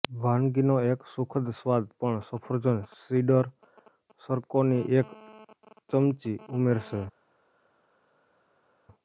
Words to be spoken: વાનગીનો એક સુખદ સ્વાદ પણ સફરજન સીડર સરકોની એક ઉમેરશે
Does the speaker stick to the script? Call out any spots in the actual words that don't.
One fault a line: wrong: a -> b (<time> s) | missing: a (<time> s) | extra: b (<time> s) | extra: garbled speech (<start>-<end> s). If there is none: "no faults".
extra: ચમચી (5.9 s)